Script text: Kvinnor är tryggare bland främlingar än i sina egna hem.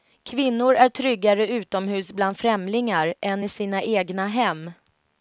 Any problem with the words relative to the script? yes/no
yes